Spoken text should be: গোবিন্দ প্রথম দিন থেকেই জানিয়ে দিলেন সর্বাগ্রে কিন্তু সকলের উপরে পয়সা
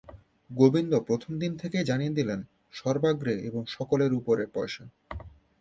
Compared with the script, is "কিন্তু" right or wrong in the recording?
wrong